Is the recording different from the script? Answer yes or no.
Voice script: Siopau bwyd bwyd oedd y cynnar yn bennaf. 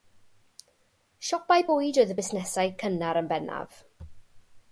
yes